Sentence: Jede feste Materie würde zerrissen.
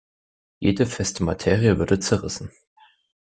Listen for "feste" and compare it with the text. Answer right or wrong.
right